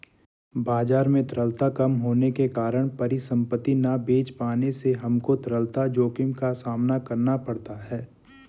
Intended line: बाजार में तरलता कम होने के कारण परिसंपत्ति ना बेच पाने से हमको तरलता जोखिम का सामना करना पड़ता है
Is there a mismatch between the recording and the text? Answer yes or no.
no